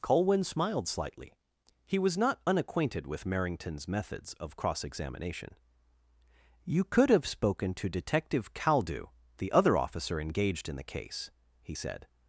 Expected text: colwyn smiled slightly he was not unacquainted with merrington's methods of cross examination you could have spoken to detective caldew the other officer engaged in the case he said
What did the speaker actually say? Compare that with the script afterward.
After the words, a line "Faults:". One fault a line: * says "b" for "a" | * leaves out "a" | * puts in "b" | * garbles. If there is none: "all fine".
colwyn smiled slightly he was not unacquainted with merrington's methods of cross examination you could have spoken to detective caldew the other officer engaged in the case he said
Faults:
all fine